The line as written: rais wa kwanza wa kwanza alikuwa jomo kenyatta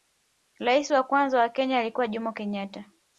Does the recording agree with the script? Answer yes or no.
no